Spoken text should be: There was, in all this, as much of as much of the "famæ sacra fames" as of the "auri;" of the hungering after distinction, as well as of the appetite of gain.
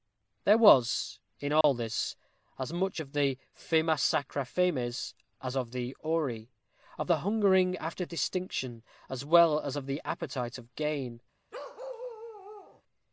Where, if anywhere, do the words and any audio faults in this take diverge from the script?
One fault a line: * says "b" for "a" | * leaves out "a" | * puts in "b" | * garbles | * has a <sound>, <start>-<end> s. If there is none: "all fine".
* has a dropout, 1.6-1.6 s
* leaves out "as much of"
* has a bark, 11.5-12.8 s